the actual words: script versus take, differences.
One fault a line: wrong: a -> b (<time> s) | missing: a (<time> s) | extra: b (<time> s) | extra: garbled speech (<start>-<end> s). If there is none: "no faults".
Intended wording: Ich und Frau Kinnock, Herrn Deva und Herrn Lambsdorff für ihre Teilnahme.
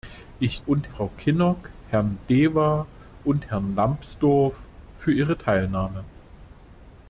no faults